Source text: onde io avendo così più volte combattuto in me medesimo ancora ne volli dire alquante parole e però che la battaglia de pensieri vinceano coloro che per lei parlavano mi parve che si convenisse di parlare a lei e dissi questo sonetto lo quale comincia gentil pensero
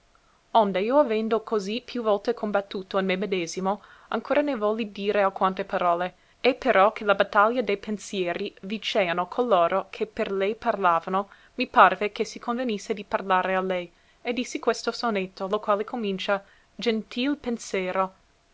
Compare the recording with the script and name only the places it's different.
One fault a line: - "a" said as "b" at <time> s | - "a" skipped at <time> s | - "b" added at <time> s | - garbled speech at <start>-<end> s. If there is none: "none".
none